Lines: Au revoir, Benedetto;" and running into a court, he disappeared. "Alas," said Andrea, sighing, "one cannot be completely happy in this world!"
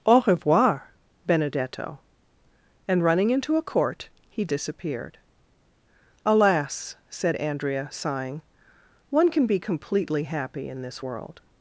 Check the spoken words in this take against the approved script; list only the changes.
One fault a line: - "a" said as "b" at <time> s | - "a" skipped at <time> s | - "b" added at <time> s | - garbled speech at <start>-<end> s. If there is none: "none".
- "cannot" said as "can" at 9.3 s